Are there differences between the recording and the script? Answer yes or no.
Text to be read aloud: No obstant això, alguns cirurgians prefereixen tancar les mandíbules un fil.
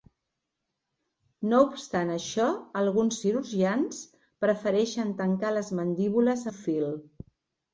no